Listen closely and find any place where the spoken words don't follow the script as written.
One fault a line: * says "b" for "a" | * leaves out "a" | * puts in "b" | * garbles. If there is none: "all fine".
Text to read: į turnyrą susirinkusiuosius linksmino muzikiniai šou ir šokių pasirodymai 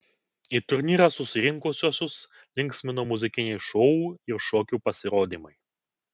all fine